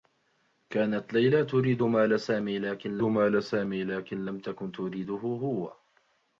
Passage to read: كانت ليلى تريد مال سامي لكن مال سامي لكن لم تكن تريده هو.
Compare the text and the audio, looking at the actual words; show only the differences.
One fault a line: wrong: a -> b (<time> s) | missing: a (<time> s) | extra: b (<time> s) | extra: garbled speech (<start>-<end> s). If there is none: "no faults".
no faults